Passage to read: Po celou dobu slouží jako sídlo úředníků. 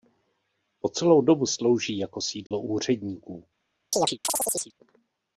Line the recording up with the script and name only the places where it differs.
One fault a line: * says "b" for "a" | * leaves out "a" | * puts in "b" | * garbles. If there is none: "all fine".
all fine